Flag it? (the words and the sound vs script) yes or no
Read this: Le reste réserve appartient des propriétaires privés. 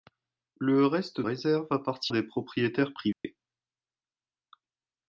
yes